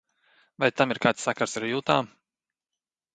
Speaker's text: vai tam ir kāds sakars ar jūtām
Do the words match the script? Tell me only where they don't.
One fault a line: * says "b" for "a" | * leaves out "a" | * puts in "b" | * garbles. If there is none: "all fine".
all fine